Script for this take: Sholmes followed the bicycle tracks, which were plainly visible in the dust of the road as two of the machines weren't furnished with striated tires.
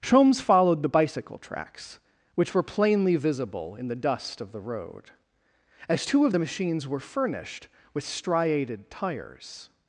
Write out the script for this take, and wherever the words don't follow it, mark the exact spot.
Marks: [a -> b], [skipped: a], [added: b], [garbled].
Sholmes followed the bicycle tracks, which were plainly visible in the dust of the road as two of the machines [weren't -> were] furnished with striated tires.